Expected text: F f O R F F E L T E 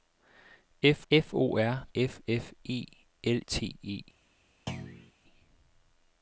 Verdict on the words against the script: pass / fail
pass